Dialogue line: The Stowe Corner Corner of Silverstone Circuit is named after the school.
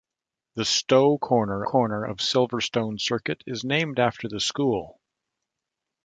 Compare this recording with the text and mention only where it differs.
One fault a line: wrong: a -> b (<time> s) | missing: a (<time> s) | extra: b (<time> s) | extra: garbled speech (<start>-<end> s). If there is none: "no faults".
no faults